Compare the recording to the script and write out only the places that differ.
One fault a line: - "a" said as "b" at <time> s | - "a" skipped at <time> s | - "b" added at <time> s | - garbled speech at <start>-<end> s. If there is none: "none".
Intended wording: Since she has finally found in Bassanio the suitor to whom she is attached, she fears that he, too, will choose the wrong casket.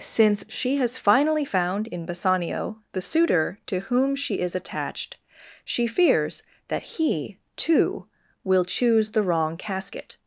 none